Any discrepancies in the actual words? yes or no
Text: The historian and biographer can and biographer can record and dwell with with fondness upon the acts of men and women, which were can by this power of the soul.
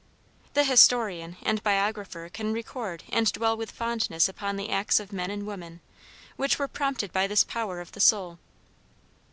yes